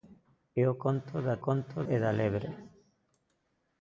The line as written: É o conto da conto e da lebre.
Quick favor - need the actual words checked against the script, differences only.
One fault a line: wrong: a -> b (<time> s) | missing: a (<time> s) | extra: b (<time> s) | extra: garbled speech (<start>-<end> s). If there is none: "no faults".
no faults